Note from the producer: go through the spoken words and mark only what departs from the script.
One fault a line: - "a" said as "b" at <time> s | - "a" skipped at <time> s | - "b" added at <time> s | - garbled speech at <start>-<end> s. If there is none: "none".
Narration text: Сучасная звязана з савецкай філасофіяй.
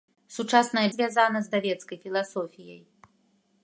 none